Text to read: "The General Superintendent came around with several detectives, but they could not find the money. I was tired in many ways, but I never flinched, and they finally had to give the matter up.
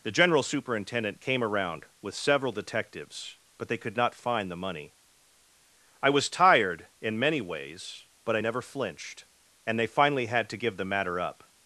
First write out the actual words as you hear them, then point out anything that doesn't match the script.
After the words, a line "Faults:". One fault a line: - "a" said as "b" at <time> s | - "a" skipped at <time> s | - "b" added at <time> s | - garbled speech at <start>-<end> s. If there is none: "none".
"The General Superintendent came around with several detectives, but they could not find the money. I was tired in many ways, but I never flinched, and they finally had to give the matter up.
Faults:
none